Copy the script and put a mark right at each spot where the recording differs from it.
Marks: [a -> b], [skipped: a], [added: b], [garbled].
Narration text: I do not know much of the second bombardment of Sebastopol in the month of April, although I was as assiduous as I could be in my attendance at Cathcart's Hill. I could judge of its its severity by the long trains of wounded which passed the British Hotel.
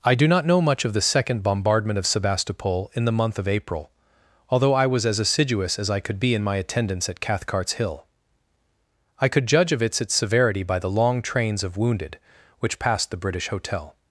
I do not know much of the second bombardment of Sebastopol in the month of April, although I was as assiduous as I could be in my attendance at Cathcart's Hill. I could judge of its its severity by the long trains of wounded which passed the British Hotel.